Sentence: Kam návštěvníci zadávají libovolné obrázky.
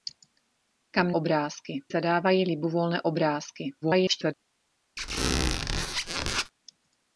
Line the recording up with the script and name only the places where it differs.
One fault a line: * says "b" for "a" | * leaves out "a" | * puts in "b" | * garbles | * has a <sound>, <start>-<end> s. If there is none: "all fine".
* says "obrázky" for "návštěvníci"
* garbles
* has a squeak, 5.0-6.5 s